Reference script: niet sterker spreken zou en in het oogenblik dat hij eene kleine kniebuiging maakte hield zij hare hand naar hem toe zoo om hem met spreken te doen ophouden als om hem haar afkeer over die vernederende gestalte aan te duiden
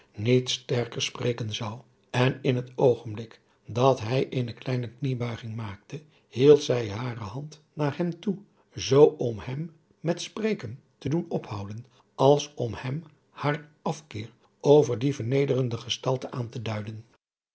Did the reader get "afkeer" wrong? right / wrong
right